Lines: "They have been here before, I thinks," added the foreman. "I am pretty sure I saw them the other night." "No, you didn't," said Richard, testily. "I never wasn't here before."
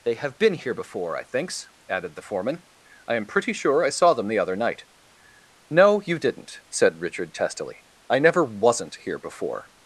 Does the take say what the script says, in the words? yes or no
yes